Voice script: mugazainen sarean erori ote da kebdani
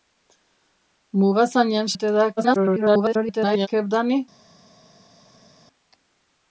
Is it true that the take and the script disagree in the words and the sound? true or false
true